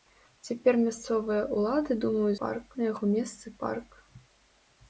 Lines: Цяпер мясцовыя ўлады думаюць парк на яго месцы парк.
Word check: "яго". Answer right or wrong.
right